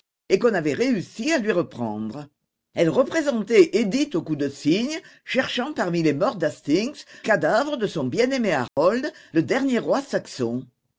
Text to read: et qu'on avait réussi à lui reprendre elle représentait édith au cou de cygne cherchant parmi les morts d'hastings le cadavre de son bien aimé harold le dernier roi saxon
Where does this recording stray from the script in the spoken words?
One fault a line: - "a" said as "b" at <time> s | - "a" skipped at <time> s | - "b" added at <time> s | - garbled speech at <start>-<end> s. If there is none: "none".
- "le" skipped at 7.0 s